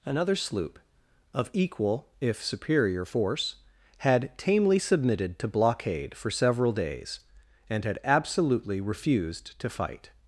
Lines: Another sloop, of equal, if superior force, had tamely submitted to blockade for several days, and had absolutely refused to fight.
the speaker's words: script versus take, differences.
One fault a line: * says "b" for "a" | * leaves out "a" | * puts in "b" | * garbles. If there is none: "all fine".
all fine